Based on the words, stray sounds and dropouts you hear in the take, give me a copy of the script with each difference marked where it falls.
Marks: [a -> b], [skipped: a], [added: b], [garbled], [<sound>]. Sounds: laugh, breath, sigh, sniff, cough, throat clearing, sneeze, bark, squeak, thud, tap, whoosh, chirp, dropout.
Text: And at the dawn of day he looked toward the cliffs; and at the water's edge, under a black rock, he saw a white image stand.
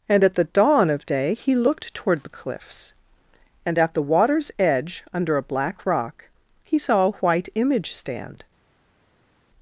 And at the dawn of day he looked toward the cliffs; and at the water's edge, under a black rock, he saw a white image stand.